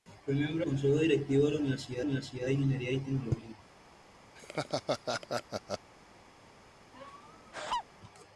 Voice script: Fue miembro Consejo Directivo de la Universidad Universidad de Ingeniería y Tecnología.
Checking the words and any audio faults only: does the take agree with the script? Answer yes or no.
no